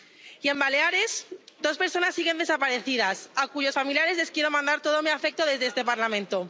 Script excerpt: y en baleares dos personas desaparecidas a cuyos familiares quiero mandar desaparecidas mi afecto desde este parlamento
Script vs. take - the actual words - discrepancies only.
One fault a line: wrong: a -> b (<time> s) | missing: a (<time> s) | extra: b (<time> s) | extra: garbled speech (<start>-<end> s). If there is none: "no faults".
extra: siguen (2.1 s)
extra: les (4.2 s)
wrong: desaparecidas -> todo (4.8 s)